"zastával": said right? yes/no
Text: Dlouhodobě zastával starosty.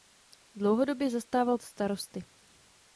yes